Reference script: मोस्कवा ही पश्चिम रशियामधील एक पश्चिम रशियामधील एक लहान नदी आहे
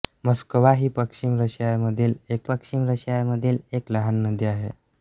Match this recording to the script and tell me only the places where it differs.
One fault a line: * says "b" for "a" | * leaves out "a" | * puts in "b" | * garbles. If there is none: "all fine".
all fine